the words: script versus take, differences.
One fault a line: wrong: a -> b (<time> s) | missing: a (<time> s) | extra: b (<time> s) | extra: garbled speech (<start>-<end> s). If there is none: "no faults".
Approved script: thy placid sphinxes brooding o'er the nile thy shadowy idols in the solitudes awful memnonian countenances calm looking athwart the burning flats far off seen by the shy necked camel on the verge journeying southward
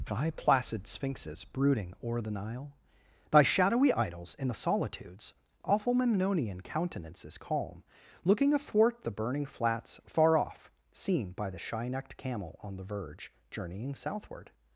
no faults